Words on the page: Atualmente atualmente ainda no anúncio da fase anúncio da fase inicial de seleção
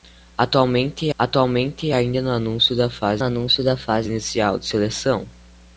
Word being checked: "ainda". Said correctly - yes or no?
yes